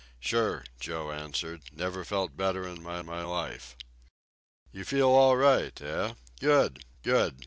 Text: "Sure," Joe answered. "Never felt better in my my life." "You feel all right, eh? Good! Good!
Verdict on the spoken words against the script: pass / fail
pass